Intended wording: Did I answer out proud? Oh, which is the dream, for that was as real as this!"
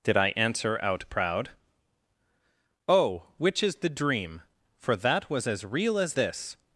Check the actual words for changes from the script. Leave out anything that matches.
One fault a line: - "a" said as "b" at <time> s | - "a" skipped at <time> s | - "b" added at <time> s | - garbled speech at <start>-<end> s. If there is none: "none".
none